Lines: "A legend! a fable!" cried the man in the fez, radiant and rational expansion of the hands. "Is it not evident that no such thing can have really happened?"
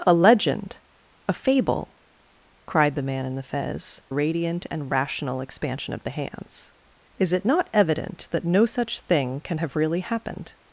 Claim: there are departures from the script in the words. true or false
false